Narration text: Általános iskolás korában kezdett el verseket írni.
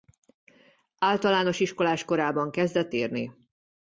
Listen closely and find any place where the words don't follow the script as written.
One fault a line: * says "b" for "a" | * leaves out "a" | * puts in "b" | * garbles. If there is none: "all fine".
* leaves out "el verseket"